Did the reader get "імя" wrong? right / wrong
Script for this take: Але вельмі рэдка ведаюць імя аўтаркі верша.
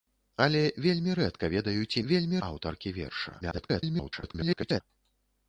wrong